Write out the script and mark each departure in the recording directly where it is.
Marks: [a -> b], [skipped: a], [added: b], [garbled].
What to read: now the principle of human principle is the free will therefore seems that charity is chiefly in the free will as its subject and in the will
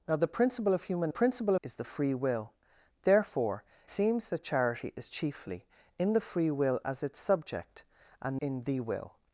now the principle of human principle is the free will therefore seems that charity is chiefly in the free will as its subject and in the will